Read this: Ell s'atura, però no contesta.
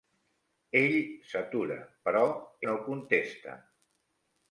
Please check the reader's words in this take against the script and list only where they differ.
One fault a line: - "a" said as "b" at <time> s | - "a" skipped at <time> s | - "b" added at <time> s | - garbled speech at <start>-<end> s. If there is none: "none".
none